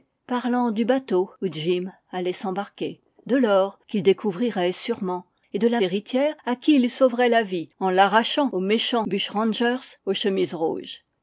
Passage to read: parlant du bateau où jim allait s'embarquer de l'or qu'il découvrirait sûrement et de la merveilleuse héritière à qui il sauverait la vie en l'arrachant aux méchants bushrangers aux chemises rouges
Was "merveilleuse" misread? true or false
true